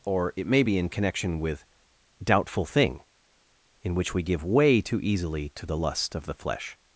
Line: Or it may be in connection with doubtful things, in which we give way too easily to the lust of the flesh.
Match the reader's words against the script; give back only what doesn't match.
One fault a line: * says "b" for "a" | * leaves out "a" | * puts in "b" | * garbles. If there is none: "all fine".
* says "thing" for "things"